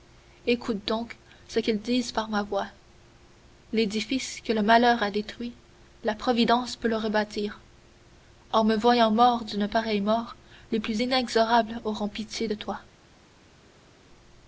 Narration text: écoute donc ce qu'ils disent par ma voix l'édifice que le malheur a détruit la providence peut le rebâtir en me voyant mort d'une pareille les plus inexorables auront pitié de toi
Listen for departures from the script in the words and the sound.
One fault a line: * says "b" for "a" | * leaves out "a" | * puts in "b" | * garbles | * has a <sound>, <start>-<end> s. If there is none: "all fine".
* puts in "mort"